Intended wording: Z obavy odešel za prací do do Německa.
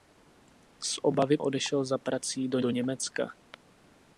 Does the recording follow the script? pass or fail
pass